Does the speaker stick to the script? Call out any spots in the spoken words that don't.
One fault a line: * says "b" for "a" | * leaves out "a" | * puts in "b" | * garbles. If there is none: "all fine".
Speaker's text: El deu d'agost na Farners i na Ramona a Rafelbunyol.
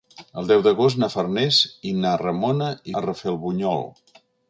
all fine